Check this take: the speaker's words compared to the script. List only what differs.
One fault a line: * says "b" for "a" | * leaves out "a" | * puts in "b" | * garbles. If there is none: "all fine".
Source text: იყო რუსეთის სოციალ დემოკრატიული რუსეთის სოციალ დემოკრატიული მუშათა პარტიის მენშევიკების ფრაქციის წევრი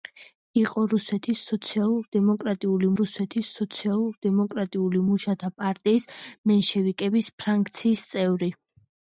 all fine